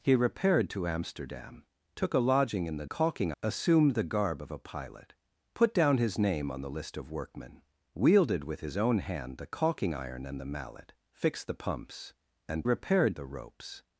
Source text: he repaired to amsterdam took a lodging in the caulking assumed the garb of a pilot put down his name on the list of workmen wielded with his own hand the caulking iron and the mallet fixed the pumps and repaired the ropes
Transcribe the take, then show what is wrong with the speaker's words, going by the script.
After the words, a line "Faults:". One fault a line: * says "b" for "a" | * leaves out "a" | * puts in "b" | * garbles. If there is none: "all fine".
he repaired to amsterdam took a lodging in the caulking assumed the garb of a pilot put down his name on the list of workmen wielded with his own hand the caulking iron and the mallet fixed the pumps and repaired the ropes
Faults:
all fine